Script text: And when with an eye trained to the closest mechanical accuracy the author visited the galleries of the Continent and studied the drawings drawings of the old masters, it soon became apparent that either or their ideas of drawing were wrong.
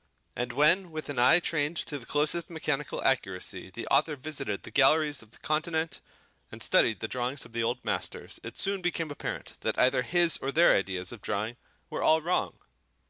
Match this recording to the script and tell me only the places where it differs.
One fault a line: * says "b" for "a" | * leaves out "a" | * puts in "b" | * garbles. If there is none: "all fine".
* leaves out "drawings"
* puts in "his"
* puts in "all"